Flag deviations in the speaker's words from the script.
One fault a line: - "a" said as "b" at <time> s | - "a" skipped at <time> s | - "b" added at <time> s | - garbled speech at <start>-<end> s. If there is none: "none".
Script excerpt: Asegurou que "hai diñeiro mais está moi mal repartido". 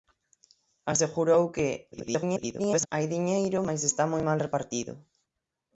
- garbled speech at 1.9-2.9 s